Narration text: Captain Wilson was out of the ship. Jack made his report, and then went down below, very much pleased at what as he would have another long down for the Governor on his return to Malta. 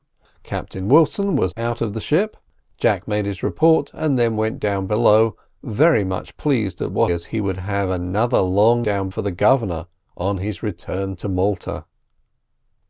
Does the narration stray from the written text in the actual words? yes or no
no